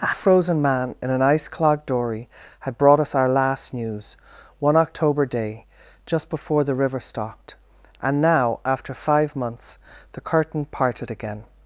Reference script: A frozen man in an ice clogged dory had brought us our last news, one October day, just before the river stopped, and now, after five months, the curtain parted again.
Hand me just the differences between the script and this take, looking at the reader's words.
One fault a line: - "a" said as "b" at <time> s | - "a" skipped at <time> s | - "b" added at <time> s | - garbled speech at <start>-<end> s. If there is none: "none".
none